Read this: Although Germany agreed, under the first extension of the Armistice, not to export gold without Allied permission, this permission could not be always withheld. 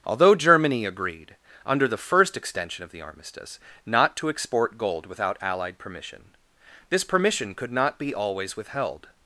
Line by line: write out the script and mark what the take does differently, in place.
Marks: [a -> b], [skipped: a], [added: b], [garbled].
Although Germany agreed, under the first extension of the Armistice, not to export gold without Allied permission, this permission could not be always withheld.